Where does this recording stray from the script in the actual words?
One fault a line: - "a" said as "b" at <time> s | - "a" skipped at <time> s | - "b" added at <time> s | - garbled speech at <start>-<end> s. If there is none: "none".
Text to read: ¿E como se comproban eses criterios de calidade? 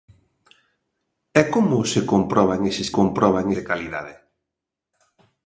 - "criterios" said as "comproban" at 3.0 s